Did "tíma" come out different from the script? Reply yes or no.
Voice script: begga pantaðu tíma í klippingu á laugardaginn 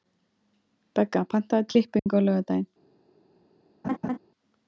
yes